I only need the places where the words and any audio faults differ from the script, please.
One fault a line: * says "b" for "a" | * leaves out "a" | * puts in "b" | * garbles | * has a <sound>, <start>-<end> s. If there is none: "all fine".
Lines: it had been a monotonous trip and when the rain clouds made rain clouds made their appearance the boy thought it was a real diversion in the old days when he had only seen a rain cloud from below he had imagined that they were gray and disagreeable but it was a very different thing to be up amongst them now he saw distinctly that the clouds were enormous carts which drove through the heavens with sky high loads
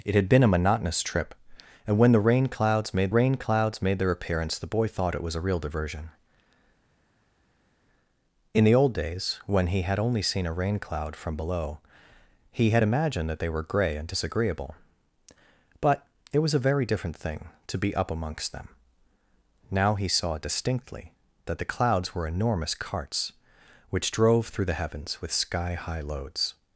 all fine